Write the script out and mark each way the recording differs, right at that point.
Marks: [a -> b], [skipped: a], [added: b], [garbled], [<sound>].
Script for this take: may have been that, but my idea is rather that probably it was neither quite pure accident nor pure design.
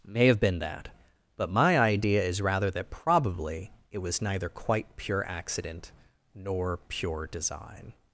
may have been that, but my idea is rather that probably it was neither quite pure accident nor pure design.